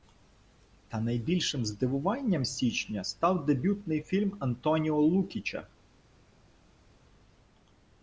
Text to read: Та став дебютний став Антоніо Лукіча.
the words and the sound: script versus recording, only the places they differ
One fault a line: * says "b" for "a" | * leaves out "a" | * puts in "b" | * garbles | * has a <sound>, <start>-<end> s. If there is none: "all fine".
* puts in "найбільшим здивуванням січня"
* says "фільм" for "став"